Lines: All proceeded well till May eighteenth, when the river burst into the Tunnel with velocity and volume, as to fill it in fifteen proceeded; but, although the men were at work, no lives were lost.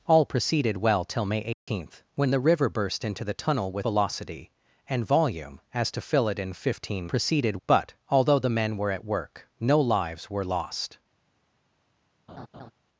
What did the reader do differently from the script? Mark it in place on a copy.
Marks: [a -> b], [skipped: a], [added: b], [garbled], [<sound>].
All proceeded well till May eighteenth, [dropout] when the river burst into the Tunnel with velocity and volume, as to fill it in fifteen proceeded; but, although the men were at work, no lives were lost. [laugh]